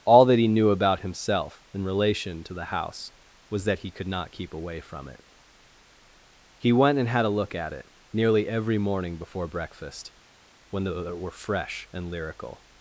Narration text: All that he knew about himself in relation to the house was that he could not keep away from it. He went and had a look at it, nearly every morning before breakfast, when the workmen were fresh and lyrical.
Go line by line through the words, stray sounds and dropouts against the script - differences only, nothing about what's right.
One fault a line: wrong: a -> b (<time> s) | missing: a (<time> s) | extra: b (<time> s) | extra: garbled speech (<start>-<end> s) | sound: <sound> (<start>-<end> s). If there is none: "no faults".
missing: workmen (11.2 s)